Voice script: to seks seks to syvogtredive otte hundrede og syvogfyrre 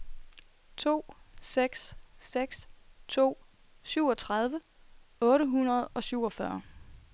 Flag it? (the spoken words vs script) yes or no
no